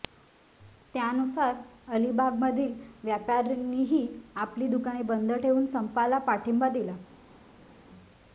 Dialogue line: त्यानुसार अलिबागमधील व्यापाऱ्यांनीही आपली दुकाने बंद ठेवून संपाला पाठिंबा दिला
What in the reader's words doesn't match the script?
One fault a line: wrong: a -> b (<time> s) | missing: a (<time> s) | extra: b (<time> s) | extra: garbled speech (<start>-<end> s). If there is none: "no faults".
no faults